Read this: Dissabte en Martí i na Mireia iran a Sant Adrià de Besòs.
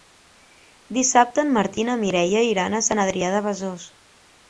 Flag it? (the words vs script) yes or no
no